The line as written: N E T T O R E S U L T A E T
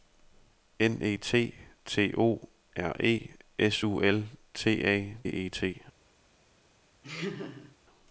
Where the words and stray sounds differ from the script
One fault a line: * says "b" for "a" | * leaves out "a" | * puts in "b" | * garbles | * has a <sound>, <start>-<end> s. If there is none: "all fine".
* has a laugh, 7.0-7.8 s